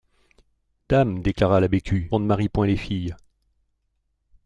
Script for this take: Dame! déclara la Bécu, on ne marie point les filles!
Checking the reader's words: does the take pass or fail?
pass